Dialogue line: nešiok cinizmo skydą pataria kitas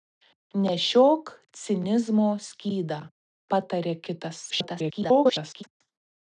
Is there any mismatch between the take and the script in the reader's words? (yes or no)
yes